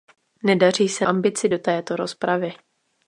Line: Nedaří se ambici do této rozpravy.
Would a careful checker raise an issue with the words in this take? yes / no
no